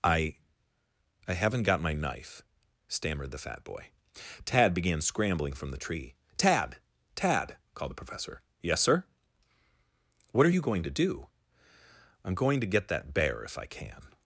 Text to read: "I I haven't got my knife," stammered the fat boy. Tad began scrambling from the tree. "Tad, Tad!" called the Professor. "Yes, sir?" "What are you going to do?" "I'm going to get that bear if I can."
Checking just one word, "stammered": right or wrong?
right